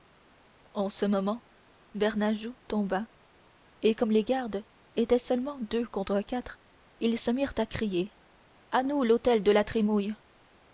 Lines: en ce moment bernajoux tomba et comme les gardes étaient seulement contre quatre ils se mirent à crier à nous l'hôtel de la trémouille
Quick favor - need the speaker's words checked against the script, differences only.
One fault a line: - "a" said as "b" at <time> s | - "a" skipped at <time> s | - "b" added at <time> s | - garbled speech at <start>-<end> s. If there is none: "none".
- "deux" added at 5.6 s